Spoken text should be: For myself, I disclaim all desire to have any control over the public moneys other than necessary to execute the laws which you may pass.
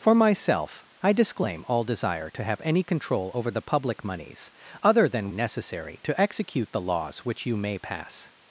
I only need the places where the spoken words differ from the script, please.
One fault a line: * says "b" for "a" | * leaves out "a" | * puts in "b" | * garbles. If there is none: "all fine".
all fine